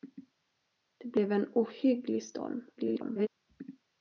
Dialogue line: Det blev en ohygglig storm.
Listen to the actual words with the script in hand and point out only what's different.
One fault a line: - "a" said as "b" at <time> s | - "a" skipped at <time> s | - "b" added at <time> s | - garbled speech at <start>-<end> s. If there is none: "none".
- garbled speech at 2.8-3.3 s